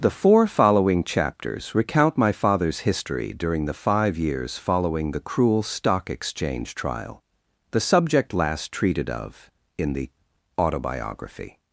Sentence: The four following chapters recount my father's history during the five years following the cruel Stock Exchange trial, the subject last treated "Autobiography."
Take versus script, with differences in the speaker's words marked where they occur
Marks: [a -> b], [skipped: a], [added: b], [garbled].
The four following chapters recount my father's history during the five years following the cruel Stock Exchange trial, the subject last treated [added: of in the] "Autobiography."